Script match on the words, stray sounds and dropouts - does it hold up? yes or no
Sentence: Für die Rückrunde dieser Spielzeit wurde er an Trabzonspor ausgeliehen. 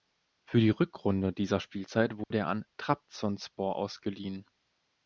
no